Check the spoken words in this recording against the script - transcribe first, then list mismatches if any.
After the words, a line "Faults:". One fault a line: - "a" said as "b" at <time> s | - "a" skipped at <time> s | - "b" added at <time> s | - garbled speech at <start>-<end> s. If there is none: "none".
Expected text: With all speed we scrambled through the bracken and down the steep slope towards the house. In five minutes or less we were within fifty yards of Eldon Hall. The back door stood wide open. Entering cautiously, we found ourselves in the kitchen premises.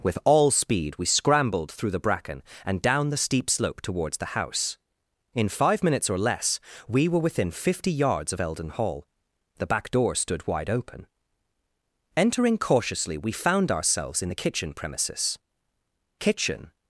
With all speed we scrambled through the bracken and down the steep slope towards the house. In five minutes or less we were within fifty yards of Eldon Hall. The back door stood wide open. Entering cautiously, we found ourselves in the kitchen premises. Kitchen
Faults:
- "Kitchen" added at 16.2 s